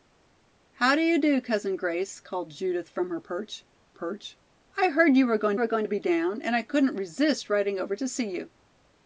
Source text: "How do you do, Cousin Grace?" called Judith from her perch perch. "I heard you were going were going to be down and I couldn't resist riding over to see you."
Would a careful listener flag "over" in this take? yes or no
no